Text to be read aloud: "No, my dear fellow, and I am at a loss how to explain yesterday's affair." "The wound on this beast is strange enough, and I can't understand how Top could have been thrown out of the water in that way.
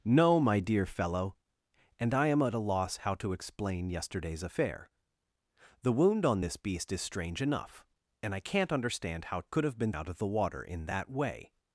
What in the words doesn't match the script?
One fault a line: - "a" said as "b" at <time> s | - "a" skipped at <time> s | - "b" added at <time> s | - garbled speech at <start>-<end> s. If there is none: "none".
- "Top" skipped at 9.4 s
- "thrown" skipped at 9.9 s